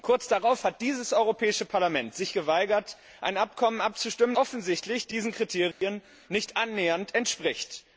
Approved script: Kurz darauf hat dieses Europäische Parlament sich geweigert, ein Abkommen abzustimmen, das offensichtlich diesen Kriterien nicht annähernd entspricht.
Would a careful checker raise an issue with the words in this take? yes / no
yes